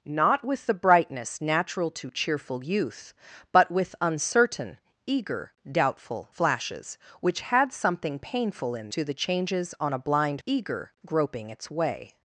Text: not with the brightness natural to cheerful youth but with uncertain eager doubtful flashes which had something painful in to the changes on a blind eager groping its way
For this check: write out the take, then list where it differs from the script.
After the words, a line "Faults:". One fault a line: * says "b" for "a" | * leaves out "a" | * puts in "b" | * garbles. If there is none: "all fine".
not with the brightness natural to cheerful youth but with uncertain eager doubtful flashes which had something painful in to the changes on a blind eager groping its way
Faults:
all fine